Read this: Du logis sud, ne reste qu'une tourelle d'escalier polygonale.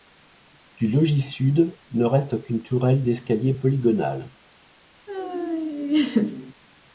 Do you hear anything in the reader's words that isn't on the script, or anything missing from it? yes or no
no